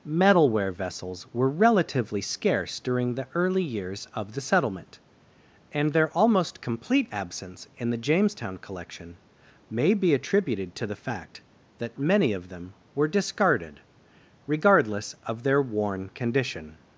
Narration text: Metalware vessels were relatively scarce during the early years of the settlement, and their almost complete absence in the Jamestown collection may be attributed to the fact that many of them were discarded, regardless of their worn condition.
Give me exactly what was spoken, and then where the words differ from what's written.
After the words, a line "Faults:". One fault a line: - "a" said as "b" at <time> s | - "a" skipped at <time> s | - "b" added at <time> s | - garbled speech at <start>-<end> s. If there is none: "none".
Metalware vessels were relatively scarce during the early years of the settlement, and their almost complete absence in the Jamestown collection may be attributed to the fact that many of them were discarded, regardless of their worn condition.
Faults:
none